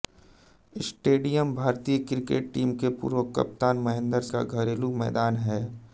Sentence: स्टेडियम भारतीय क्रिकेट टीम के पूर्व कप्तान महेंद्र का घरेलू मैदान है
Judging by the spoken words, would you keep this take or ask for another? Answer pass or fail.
pass